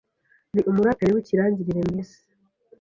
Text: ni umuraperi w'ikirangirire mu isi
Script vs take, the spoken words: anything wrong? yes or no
no